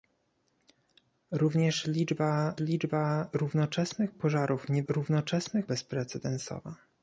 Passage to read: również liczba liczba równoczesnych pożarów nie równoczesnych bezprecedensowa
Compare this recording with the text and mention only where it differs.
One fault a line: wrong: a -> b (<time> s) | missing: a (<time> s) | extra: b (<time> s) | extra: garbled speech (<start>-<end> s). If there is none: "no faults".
no faults